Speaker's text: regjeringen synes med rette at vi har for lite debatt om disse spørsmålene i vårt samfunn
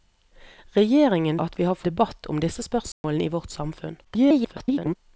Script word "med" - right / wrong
wrong